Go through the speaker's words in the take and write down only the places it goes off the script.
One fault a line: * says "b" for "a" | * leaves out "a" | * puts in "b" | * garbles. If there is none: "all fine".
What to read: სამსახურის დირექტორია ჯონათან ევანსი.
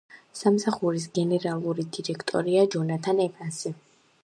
* puts in "გენერალური"